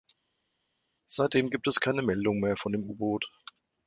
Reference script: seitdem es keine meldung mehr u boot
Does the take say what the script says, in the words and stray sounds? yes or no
no